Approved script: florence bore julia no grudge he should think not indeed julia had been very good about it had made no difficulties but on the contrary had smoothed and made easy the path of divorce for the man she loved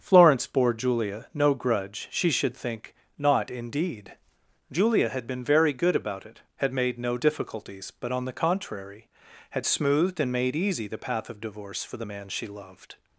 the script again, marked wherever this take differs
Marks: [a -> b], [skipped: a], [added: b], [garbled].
florence bore julia no grudge [he -> she] should think not indeed julia had been very good about it had made no difficulties but on the contrary had smoothed and made easy the path of divorce for the man she loved